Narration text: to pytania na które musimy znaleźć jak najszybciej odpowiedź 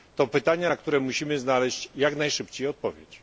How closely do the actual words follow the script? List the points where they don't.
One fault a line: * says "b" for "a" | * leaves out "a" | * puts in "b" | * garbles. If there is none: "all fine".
all fine